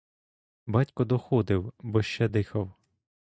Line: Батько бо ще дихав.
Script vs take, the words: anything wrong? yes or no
yes